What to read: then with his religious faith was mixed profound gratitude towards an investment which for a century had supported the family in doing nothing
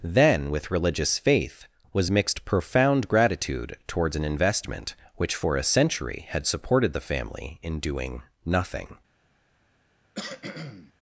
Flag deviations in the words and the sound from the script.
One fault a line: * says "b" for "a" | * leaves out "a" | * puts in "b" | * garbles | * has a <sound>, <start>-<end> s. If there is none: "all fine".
* leaves out "his"
* has a cough, 10.1-10.9 s